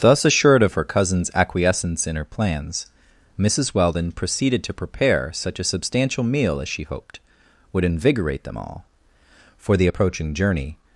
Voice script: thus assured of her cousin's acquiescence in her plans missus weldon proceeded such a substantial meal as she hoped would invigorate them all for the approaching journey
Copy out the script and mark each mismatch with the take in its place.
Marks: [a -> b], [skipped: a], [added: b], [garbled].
thus assured of her cousin's acquiescence in her plans missus weldon proceeded [added: to prepare] such a substantial meal as she hoped would invigorate them all for the approaching journey